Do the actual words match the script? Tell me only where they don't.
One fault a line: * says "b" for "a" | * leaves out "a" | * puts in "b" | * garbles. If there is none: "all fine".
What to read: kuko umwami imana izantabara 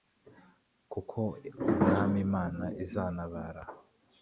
all fine